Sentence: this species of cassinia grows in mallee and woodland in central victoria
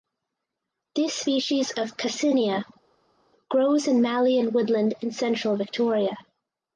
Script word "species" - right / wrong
right